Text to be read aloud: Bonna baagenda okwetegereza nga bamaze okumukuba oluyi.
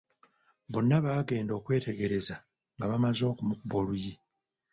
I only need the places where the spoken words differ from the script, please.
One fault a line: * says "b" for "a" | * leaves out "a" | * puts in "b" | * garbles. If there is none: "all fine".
all fine